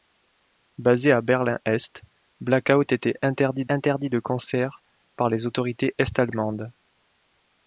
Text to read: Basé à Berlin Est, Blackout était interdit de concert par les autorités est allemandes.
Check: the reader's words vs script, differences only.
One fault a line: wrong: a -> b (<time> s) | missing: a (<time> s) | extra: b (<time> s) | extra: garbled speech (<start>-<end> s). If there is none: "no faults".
extra: interdit (3.7 s)